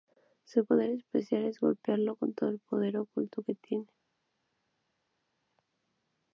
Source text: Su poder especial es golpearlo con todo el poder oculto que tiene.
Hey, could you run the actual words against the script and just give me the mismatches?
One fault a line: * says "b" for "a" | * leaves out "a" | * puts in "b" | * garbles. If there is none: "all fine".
all fine